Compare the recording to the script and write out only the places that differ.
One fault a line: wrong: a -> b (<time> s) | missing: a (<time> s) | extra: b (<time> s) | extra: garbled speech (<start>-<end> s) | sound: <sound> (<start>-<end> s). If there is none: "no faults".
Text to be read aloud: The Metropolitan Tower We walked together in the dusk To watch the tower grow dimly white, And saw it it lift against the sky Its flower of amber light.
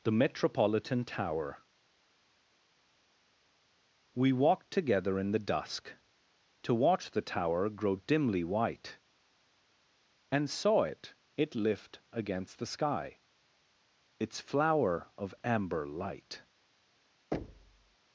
sound: thud (17.3-18.0 s)